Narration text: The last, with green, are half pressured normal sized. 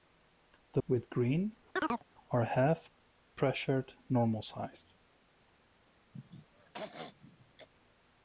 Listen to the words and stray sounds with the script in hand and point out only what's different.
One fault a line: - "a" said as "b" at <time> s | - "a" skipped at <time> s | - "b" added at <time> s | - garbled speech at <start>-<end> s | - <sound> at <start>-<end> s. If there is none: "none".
- "last" skipped at 0.8 s
- chirp at 1.8-2.0 s
- throat clearing at 6.1-7.7 s